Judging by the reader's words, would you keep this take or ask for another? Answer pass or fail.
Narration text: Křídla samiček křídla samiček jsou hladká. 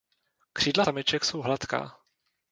fail